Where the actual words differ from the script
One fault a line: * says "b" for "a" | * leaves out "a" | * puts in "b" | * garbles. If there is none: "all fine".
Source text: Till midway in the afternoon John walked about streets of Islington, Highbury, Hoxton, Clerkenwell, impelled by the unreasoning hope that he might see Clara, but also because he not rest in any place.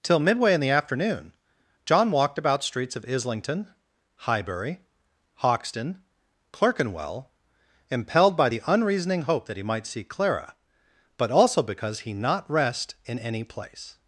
all fine